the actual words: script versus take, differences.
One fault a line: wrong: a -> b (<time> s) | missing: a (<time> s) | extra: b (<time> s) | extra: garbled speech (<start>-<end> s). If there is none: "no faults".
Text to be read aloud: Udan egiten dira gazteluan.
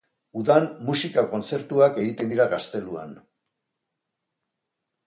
extra: musika kontzertuak (0.9 s)